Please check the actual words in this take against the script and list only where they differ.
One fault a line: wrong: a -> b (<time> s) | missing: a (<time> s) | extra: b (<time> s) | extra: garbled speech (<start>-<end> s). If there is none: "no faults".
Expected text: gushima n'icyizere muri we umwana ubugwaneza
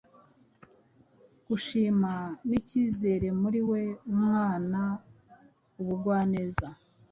no faults